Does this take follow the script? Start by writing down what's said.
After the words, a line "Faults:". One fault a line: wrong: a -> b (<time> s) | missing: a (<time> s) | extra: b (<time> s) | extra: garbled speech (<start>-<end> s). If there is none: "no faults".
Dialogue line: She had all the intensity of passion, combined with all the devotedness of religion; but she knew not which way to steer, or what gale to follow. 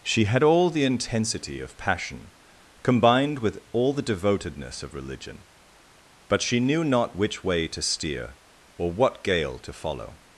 She had all the intensity of passion, combined with all the devotedness of religion; but she knew not which way to steer, or what gale to follow.
Faults:
no faults